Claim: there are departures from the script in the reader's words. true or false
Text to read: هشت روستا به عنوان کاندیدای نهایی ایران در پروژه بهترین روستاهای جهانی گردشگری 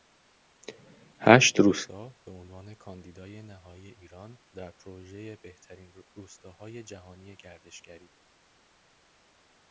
false